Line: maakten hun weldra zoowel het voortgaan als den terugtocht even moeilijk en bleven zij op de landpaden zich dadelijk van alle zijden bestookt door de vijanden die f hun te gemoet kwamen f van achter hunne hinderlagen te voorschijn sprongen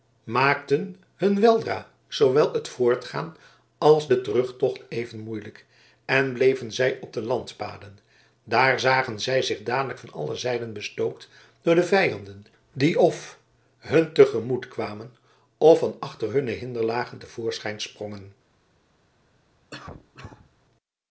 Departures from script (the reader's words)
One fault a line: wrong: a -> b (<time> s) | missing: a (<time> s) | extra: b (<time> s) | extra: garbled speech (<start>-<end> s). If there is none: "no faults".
extra: daar zagen zij (8.4 s)